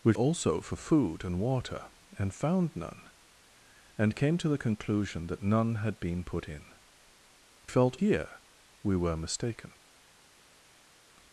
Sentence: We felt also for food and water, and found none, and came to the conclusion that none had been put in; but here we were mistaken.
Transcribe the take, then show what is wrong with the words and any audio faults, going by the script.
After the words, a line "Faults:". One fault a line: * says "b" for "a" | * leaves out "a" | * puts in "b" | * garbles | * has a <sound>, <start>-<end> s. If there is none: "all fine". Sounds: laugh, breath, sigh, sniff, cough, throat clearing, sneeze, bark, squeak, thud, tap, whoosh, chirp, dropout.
We also for food and water, and found none, and came to the conclusion that none had been put in; felt here we were mistaken.
Faults:
* leaves out "felt"
* says "felt" for "but"